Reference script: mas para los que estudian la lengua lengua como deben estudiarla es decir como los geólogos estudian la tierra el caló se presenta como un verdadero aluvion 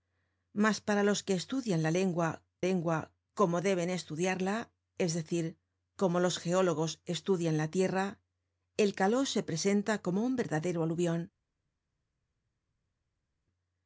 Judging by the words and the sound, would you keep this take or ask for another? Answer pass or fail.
pass